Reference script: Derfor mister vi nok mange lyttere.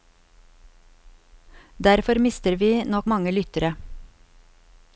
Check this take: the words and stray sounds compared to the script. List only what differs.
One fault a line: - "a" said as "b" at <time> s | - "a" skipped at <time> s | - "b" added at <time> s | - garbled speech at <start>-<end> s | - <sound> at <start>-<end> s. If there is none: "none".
none